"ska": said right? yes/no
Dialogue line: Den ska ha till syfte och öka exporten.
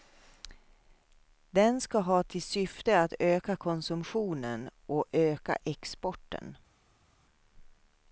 yes